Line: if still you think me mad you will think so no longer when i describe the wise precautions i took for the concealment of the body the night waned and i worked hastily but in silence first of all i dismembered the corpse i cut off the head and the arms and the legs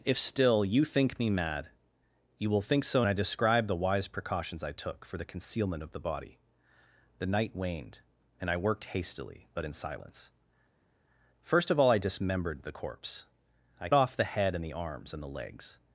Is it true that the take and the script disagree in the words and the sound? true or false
true